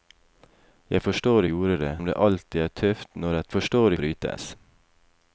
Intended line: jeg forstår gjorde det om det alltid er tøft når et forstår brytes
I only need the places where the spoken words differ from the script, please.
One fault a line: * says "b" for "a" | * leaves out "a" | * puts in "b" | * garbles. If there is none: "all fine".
all fine